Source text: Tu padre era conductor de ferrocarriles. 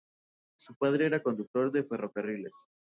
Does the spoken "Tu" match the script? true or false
false